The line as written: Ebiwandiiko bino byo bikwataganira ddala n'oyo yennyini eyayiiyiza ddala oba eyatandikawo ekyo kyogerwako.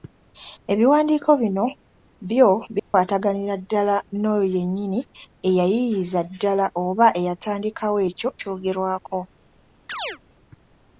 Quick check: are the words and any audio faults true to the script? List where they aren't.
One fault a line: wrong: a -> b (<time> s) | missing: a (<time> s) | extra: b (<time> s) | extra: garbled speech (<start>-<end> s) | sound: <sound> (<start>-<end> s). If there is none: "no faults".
sound: dropout (2.8-2.9 s)
sound: chirp (9.9-10.2 s)